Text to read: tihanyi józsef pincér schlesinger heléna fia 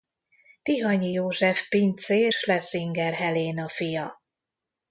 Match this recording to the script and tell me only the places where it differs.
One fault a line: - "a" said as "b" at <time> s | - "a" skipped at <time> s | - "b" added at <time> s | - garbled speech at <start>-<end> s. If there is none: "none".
none